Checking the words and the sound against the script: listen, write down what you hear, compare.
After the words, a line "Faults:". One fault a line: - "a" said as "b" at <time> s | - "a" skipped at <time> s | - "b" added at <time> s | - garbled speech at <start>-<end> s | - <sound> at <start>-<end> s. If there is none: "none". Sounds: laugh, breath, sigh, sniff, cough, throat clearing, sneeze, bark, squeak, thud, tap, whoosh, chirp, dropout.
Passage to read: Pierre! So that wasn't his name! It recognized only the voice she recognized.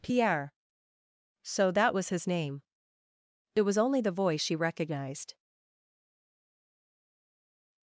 Pierre! So that was his name! It was only the voice she recognized.
Faults:
- "wasn't" said as "was" at 1.9 s
- "recognized" said as "was" at 3.6 s